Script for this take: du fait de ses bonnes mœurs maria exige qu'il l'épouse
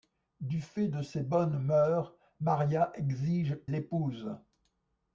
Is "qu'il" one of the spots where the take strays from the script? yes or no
yes